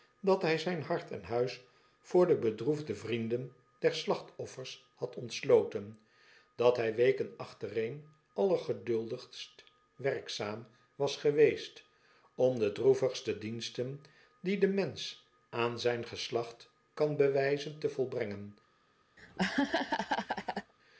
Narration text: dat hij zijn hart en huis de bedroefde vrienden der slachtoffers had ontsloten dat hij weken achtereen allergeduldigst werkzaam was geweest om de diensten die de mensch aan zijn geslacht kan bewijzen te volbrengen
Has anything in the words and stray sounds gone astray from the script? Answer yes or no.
yes